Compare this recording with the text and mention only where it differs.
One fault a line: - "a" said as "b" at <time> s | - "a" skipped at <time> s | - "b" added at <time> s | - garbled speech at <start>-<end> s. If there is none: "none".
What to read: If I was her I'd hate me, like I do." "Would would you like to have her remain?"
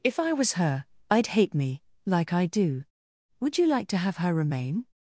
- "would" skipped at 3.6 s